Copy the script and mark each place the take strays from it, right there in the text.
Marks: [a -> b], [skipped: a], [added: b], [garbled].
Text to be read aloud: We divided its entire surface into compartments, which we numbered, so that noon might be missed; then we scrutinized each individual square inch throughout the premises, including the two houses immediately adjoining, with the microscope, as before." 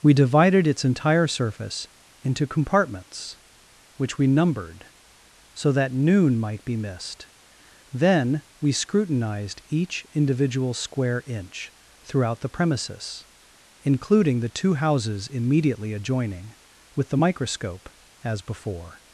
We divided its entire surface into compartments, which we numbered, so that noon might be missed; then we scrutinized each individual square inch throughout the premises, including the two houses immediately adjoining, with the microscope, as before."